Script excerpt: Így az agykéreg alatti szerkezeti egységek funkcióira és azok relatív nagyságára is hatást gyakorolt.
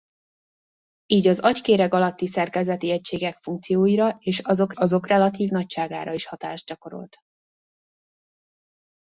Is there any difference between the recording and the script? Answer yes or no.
yes